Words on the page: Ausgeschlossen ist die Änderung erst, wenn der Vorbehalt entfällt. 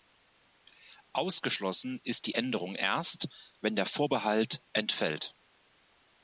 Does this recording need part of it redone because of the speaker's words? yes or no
no